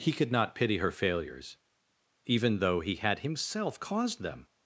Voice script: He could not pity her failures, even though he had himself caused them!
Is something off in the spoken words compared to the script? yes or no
no